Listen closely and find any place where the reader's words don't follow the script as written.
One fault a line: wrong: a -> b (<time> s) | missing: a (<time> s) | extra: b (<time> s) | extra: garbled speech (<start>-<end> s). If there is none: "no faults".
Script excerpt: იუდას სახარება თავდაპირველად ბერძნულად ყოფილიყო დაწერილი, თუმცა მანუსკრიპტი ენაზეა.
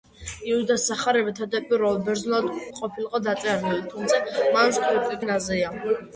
no faults